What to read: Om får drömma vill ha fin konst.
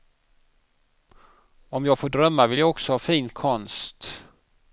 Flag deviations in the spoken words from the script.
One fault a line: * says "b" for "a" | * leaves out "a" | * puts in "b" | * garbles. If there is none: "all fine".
* puts in "jag"
* puts in "jag också"